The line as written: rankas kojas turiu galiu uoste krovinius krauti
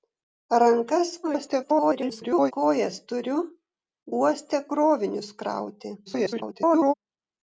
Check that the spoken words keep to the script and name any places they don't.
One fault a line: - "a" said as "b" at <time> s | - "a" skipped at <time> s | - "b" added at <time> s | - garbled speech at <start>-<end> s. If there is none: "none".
- garbled speech at 1.2-2.5 s
- "galiu" skipped at 3.4 s
- garbled speech at 6.1-6.9 s